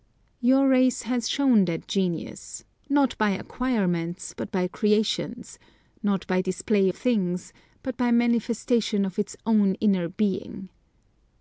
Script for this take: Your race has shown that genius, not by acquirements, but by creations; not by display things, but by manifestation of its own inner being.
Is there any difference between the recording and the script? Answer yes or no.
no